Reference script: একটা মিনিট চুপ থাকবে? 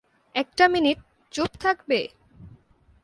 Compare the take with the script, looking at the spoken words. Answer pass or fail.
pass